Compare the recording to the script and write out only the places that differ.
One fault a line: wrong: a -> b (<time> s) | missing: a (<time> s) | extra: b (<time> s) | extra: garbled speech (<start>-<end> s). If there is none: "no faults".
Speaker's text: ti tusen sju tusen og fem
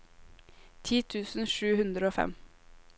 wrong: tusen -> hundre (1.8 s)